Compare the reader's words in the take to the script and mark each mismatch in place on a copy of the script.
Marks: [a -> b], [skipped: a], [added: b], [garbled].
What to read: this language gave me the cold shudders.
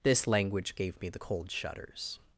this language gave me the cold shudders.